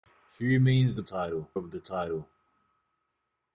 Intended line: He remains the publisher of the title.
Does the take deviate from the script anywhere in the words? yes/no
yes